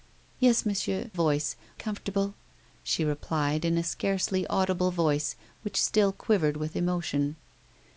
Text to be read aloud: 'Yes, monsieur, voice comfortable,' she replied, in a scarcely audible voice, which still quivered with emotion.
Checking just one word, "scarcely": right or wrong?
right